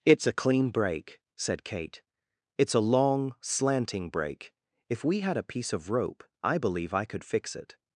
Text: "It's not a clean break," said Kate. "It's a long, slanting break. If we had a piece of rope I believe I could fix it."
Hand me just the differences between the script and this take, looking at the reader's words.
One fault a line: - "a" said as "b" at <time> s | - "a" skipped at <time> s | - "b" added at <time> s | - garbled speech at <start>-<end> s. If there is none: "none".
- "not" skipped at 0.2 s